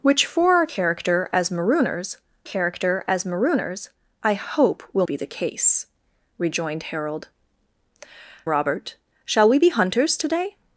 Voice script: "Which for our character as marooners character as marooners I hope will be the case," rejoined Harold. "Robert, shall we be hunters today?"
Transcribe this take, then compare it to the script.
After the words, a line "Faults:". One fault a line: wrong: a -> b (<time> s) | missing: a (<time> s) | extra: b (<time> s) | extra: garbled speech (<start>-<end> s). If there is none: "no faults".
"Which for our character as marooners character as marooners I hope will be the case," rejoined Harold. "Robert, shall we be hunters today?"
Faults:
no faults